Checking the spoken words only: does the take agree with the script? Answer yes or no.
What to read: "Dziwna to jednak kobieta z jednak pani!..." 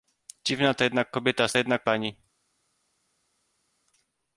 yes